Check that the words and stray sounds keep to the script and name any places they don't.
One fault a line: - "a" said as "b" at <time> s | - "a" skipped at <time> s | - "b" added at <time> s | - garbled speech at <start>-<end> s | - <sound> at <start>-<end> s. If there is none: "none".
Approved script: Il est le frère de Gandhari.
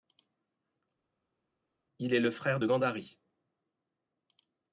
none